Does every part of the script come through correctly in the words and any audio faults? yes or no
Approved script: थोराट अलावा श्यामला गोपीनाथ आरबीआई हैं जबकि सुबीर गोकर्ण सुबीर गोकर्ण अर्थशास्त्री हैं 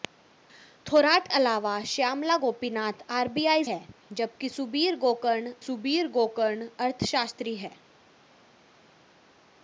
yes